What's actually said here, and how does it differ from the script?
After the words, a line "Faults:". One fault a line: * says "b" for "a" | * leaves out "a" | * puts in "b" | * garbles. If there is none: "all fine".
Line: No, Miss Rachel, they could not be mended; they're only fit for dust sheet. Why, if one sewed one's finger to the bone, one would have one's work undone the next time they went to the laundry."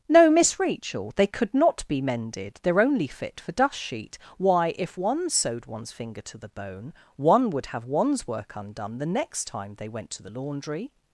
No, Miss Rachel, they could not be mended; they're only fit for dust sheet. Why, if one sewed one's finger to the bone, one would have one's work undone the next time they went to the laundry."
Faults:
all fine